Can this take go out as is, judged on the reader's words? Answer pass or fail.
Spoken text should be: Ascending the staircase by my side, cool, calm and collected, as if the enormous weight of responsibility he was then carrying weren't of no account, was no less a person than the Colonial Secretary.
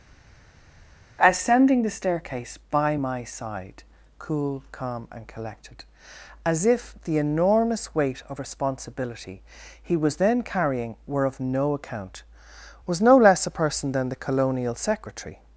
fail